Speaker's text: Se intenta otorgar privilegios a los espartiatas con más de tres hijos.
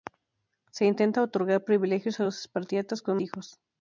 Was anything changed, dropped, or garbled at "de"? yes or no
yes